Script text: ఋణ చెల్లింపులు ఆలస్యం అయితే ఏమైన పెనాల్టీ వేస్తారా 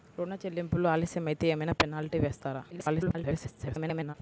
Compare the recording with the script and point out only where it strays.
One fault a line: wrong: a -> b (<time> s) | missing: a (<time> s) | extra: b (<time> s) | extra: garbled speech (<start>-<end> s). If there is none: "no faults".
extra: garbled speech (2.7-4.1 s)